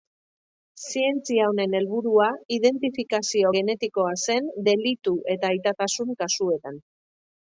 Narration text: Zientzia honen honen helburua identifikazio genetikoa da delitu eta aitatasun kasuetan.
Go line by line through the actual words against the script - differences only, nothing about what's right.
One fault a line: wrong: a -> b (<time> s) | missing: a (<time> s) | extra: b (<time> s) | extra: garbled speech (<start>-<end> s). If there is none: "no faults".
missing: honen (1.8 s)
wrong: da -> zen (4.3 s)